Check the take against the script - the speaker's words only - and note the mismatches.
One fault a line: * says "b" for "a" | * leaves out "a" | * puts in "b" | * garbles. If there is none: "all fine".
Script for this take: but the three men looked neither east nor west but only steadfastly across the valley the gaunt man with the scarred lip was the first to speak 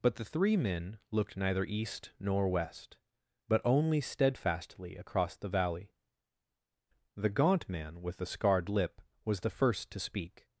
all fine